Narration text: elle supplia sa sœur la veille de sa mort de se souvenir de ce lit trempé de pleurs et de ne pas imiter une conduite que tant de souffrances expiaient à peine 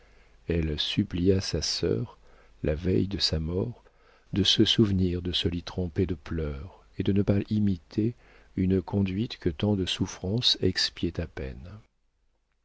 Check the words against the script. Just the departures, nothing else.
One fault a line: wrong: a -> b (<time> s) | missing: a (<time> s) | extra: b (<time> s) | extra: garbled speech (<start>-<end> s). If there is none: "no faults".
no faults